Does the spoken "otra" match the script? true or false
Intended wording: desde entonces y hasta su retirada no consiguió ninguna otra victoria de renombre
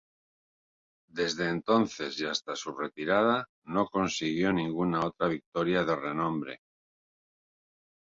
true